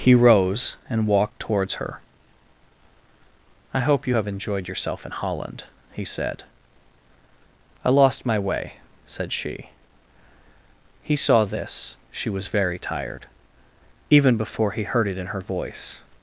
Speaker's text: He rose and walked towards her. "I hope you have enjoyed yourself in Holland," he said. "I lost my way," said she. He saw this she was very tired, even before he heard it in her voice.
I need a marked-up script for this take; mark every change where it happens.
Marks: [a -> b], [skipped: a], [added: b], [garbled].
He rose and walked towards her. "I hope you have enjoyed yourself in Holland," he said. "I lost my way," said she. He saw this she was very tired, even before he heard it in her voice.